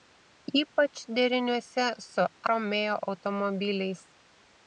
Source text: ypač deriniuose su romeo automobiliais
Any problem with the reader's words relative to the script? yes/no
no